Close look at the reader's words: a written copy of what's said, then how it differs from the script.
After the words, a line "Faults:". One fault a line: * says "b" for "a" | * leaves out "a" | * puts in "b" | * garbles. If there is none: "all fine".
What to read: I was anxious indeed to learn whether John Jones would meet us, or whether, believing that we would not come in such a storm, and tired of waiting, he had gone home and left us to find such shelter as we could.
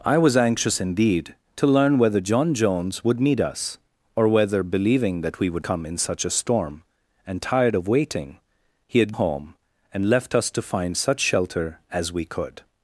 I was anxious indeed to learn whether John Jones would meet us, or whether, believing that we would come in such a storm, and tired of waiting, he had home and left us to find such shelter as we could.
Faults:
* leaves out "not"
* leaves out "gone"